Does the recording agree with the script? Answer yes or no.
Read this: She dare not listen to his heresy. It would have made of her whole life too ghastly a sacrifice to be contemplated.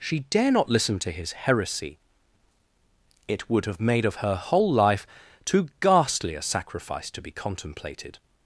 yes